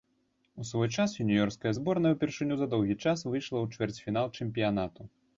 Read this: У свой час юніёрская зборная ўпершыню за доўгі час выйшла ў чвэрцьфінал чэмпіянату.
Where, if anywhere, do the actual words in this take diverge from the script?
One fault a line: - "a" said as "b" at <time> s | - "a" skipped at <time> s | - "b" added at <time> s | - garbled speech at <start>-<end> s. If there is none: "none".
none